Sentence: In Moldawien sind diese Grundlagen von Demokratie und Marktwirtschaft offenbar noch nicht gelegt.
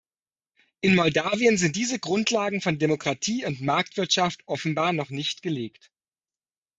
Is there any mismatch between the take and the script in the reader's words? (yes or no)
no